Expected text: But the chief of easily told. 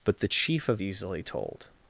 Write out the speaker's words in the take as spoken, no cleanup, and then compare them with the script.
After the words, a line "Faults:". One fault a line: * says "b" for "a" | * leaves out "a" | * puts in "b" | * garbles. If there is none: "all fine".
But the chief of easily told.
Faults:
all fine